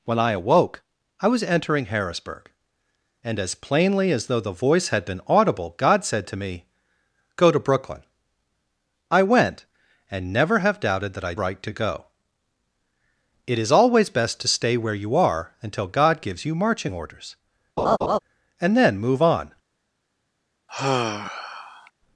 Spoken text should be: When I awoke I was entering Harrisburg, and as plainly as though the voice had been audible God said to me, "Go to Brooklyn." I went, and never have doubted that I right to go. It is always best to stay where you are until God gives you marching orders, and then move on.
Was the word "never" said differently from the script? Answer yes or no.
no